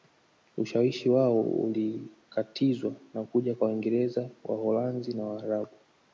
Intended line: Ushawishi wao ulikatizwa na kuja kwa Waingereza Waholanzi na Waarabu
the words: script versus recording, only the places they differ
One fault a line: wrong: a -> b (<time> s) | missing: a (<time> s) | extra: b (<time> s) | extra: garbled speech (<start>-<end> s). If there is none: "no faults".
no faults